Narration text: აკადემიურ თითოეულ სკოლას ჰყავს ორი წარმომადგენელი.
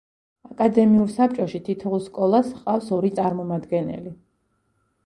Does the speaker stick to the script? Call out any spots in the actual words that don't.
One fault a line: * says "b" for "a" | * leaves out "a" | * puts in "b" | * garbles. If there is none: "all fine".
* puts in "საბჭოში"